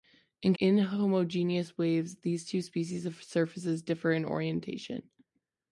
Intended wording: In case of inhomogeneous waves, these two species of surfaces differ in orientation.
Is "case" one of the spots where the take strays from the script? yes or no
yes